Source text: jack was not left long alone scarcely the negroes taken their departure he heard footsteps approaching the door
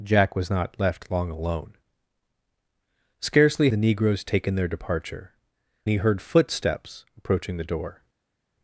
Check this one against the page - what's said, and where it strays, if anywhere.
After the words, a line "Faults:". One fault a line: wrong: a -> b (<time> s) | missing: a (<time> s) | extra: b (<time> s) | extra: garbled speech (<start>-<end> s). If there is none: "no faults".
jack was not left long alone scarcely the negroes taken their departure he heard footsteps approaching the door
Faults:
no faults